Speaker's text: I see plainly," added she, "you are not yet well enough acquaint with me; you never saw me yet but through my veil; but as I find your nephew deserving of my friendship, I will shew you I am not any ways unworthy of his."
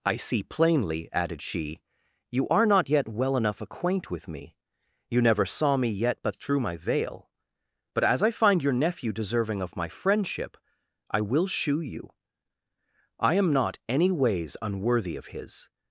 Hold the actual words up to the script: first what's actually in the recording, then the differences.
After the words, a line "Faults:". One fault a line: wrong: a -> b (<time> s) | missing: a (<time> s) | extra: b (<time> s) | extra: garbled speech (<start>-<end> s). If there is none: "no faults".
I see plainly," added she, "you are not yet well enough acquaint with me; you never saw me yet but through my veil; but as I find your nephew deserving of my friendship, I will shew you I am not any ways unworthy of his."
Faults:
no faults